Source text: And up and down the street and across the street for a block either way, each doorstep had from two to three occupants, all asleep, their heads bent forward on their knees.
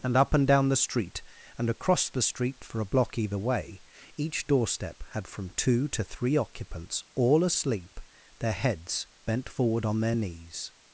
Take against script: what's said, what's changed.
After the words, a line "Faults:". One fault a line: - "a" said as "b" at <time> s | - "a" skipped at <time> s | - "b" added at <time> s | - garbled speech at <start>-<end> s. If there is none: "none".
And up and down the street and across the street for a block either way, each doorstep had from two to three occupants, all asleep, their heads bent forward on their knees.
Faults:
none